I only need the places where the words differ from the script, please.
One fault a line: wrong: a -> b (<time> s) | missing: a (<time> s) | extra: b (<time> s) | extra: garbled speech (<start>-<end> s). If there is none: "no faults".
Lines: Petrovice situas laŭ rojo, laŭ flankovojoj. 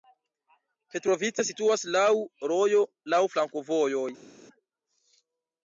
no faults